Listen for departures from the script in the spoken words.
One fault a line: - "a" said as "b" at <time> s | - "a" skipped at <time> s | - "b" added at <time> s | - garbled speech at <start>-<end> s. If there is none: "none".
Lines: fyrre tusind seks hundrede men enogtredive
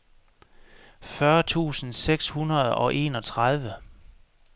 - "men" said as "og" at 2.7 s